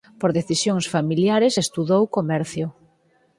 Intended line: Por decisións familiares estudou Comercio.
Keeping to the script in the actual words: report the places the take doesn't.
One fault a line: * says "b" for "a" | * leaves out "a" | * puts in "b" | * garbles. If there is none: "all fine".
all fine